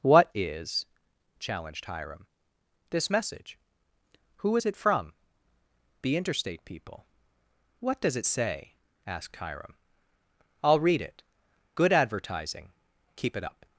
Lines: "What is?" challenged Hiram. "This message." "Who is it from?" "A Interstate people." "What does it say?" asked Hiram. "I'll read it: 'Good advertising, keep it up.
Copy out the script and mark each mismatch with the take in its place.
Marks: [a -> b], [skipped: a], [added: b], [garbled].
"What is?" challenged Hiram. "This message." "Who is it from?" ["A -> The] Interstate people." "What does it say?" asked Hiram. "I'll read it: 'Good advertising, keep it up.